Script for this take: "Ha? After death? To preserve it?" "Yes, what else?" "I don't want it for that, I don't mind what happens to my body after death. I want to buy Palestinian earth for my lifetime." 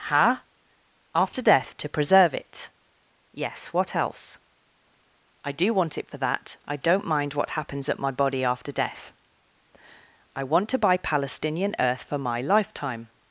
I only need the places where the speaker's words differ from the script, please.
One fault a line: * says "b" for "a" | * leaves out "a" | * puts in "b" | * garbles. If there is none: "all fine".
* says "do" for "don't"
* says "at" for "to"